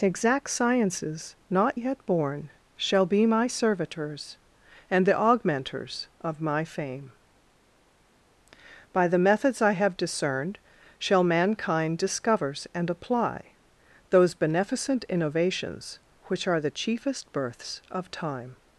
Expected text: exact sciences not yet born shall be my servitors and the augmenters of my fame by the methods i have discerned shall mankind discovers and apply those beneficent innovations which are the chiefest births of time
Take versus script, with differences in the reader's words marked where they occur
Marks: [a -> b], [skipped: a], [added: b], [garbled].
exact sciences not yet born shall be my servitors and the augmenters of my fame by the methods i have discerned shall mankind discovers and apply those beneficent innovations which are the chiefest births of time